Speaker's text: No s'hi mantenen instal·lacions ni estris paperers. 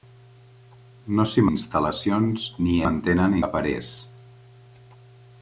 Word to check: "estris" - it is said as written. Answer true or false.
false